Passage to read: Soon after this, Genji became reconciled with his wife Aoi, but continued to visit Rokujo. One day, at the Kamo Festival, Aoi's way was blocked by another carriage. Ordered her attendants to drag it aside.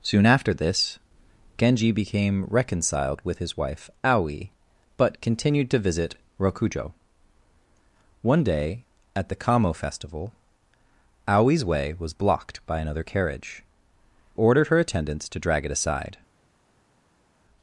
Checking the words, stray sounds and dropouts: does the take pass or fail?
pass